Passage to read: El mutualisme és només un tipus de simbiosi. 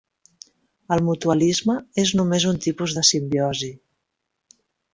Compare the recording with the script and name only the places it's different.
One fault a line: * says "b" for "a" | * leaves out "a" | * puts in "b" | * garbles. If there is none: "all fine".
all fine